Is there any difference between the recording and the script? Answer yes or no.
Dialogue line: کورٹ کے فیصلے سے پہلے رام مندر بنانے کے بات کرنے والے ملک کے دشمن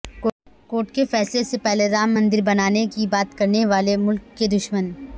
yes